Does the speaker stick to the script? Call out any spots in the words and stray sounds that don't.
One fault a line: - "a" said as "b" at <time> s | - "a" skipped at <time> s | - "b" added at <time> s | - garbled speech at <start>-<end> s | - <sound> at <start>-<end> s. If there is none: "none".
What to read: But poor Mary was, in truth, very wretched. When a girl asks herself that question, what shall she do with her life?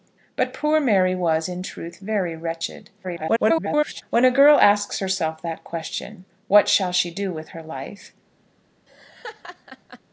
- garbled speech at 3.0-4.0 s
- laugh at 8.9-10.0 s